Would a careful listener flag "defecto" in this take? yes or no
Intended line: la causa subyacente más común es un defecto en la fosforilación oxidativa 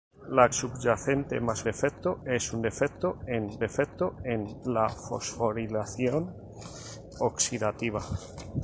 no